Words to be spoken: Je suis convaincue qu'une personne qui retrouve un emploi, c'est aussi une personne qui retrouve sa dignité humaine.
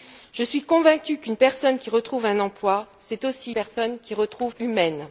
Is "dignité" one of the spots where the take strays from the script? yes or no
yes